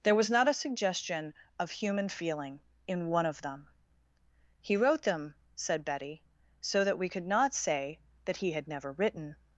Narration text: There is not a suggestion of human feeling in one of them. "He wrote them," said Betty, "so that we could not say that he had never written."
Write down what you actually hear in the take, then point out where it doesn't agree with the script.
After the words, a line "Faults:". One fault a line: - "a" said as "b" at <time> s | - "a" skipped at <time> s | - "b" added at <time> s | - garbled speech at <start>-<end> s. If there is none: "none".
There was not a suggestion of human feeling in one of them. "He wrote them," said Betty, "so that we could not say that he had never written."
Faults:
- "is" said as "was" at 0.1 s